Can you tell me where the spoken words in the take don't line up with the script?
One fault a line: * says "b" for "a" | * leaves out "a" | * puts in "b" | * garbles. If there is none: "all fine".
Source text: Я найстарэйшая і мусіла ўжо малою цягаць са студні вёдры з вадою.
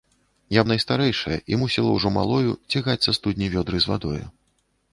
all fine